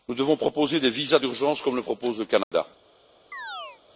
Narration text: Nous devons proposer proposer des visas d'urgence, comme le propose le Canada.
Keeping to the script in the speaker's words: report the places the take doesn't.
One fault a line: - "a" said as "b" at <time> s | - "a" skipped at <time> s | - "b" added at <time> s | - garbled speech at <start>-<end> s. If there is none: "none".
- "proposer" skipped at 0.8 s